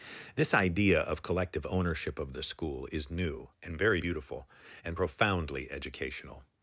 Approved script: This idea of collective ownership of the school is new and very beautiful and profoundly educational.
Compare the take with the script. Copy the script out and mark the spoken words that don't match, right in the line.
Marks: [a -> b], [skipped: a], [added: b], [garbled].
This idea of collective ownership of the school is new and very beautiful and profoundly educational.